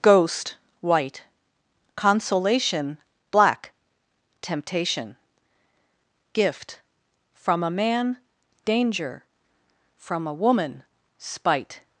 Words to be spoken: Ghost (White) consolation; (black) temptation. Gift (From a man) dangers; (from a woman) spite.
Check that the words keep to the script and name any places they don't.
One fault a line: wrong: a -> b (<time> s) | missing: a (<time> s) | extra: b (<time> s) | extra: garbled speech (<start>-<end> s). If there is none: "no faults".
wrong: dangers -> danger (8.7 s)